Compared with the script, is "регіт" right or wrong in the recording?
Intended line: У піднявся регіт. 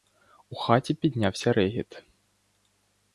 right